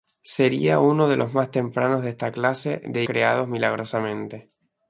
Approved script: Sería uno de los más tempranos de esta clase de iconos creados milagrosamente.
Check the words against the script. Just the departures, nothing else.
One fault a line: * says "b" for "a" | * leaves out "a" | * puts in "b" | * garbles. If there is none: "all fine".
* leaves out "iconos"